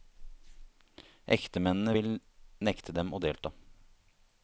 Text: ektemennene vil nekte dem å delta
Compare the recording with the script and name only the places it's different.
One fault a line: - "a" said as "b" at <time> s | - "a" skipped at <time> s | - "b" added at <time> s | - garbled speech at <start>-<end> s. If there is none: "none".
none